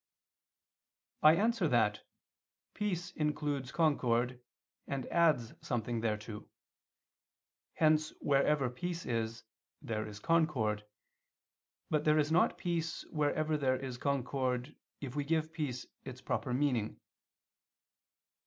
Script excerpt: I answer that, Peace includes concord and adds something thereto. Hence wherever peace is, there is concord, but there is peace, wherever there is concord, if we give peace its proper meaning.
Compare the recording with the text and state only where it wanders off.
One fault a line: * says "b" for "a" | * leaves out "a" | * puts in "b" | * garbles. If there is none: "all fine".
* puts in "not"